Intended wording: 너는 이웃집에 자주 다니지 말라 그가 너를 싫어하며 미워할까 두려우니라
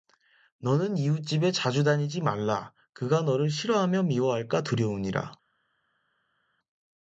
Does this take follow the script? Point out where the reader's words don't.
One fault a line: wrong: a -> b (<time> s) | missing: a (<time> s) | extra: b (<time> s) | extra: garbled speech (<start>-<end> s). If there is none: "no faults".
no faults